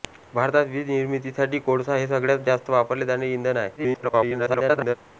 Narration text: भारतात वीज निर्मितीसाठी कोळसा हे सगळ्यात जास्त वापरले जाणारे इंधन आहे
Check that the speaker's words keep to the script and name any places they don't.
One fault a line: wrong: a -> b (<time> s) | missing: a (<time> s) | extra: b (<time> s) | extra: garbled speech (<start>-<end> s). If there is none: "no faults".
extra: garbled speech (3.8-5.0 s)